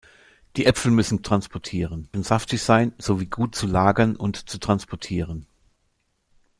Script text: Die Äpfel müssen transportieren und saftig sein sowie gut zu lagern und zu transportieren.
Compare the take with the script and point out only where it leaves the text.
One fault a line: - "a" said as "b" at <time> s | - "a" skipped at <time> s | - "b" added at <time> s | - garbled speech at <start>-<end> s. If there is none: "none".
none